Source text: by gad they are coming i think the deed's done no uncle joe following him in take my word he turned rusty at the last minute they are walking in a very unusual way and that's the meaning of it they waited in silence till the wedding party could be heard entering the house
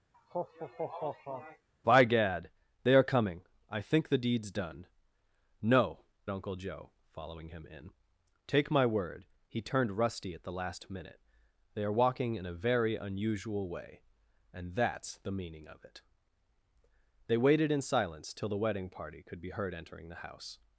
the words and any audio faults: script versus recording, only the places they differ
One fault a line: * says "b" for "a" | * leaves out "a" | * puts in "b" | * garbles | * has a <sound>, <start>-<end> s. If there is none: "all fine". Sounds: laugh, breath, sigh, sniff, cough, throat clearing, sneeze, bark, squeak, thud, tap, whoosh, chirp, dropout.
* has a laugh, 0.1-1.7 s